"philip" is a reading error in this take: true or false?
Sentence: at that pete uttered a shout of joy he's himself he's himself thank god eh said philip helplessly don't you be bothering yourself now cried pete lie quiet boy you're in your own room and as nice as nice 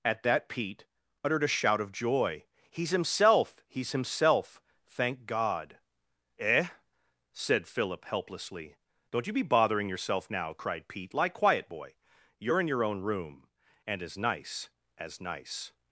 false